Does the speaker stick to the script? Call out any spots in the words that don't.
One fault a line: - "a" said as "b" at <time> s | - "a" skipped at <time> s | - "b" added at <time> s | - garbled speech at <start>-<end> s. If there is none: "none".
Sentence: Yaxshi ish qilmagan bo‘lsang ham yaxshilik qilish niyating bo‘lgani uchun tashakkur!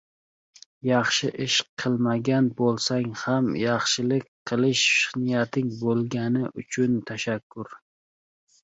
none